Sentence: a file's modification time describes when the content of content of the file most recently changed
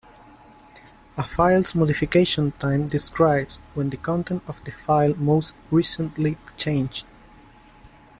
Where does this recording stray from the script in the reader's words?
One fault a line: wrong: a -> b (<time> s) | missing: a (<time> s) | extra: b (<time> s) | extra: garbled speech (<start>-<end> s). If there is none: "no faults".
missing: content of (4.6 s)